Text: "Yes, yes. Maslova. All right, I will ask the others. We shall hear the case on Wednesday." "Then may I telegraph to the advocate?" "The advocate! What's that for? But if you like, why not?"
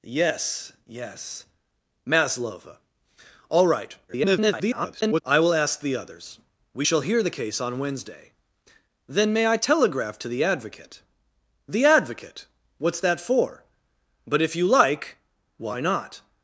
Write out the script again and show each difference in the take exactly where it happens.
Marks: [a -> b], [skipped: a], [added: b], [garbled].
"Yes, yes. Maslova. All right, [garbled] I will ask the others. We shall hear the case on Wednesday." "Then may I telegraph to the advocate?" "The advocate! What's that for? But if you like, why not?"